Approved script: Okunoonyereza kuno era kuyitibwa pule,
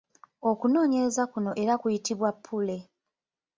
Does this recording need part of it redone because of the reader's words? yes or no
no